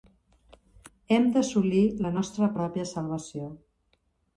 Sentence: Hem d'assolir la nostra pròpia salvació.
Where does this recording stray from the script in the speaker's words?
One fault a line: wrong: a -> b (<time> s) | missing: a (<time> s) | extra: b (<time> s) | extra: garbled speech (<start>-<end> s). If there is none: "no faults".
no faults